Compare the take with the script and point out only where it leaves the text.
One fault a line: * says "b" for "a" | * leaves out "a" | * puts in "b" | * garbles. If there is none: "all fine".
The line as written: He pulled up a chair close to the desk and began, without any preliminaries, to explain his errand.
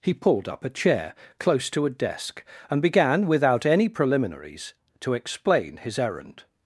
* says "a" for "the"